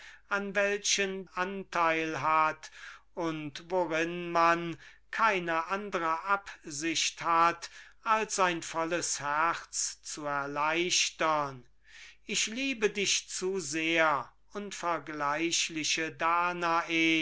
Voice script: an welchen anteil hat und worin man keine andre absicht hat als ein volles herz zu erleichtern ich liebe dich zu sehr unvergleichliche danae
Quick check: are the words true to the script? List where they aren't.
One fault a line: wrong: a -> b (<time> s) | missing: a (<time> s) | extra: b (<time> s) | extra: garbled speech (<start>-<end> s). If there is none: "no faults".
no faults